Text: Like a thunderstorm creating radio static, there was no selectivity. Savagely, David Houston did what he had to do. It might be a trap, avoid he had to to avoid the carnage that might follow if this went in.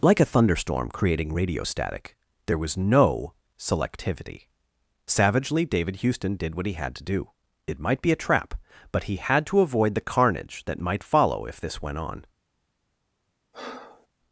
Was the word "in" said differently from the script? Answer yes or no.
yes